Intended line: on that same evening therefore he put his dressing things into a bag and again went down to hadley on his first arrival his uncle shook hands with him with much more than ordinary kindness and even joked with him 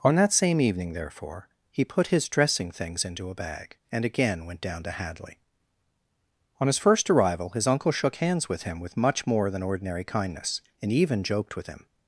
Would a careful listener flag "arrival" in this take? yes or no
no